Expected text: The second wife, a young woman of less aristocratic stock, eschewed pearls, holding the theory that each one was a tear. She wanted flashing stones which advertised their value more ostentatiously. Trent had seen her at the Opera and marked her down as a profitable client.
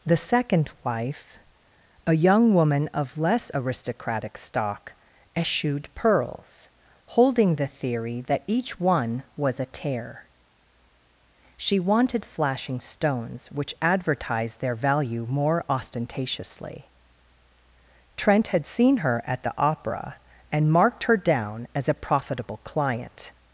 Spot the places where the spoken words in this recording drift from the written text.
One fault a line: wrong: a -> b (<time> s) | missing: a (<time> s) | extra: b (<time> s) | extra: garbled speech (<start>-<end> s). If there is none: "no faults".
no faults